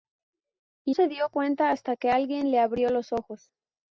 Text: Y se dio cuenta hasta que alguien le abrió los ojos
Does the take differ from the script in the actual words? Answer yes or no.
no